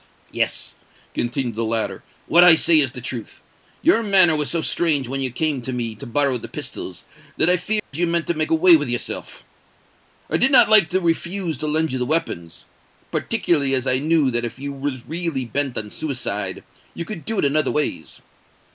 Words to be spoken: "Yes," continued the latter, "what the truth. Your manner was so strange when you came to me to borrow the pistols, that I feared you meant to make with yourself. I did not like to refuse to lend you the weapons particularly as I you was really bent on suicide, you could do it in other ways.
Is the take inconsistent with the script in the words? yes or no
yes